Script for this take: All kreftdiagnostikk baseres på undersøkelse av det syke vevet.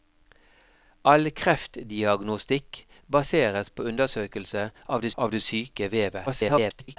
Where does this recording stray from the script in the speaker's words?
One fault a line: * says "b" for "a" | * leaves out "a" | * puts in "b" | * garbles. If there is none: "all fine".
* puts in "av det"
* garbles